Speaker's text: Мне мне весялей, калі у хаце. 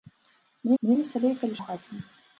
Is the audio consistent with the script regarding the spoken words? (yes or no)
yes